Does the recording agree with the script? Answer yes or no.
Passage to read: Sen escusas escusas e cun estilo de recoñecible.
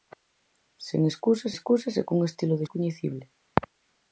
yes